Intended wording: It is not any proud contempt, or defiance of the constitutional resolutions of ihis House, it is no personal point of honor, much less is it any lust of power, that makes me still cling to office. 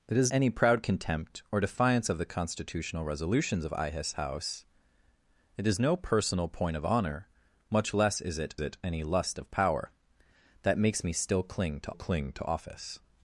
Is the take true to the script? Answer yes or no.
no